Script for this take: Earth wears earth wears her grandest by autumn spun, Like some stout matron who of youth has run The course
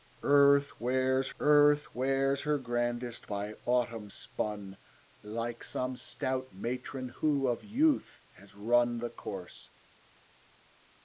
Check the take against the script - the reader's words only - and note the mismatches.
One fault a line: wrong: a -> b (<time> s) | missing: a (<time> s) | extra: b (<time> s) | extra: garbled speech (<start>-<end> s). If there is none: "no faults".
no faults